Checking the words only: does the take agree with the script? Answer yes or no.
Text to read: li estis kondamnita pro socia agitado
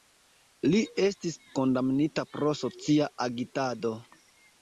yes